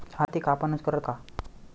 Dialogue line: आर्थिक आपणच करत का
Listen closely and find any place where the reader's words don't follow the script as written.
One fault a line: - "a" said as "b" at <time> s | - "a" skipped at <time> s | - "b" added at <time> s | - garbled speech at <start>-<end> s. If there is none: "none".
none